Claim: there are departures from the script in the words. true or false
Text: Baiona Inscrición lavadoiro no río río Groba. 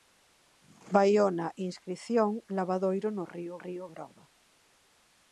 false